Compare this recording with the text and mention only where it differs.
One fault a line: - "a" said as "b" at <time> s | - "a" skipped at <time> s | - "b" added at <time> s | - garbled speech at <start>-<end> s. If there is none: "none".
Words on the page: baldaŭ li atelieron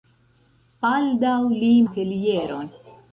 none